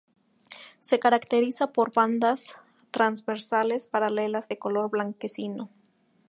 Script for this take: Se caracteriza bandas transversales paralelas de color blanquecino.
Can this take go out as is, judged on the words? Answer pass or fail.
fail